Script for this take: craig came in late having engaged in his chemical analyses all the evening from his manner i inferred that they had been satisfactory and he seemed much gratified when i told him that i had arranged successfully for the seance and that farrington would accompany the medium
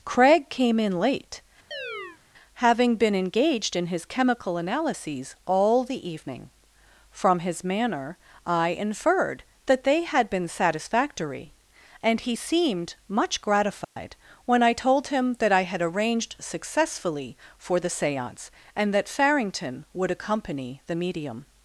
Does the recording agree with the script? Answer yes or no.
no